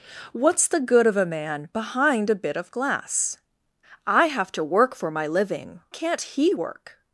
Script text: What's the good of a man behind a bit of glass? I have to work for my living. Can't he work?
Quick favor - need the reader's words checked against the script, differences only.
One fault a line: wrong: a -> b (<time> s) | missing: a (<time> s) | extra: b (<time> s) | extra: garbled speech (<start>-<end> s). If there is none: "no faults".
no faults